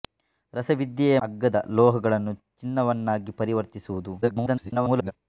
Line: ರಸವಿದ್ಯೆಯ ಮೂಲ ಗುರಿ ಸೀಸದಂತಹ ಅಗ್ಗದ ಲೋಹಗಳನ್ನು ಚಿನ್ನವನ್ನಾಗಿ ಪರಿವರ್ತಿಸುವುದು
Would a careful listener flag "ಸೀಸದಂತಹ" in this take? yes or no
yes